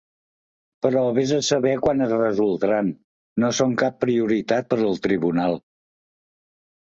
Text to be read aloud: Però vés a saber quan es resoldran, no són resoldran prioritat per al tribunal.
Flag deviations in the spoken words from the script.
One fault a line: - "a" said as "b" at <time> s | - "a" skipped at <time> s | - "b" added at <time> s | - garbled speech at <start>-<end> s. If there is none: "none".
- "resoldran" said as "cap" at 3.8 s